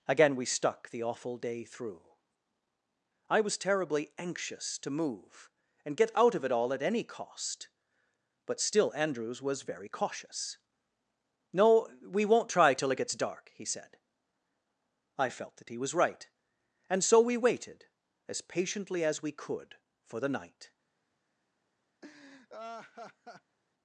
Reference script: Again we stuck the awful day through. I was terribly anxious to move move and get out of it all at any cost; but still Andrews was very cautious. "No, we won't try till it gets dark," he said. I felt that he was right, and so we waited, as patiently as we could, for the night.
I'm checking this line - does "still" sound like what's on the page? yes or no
yes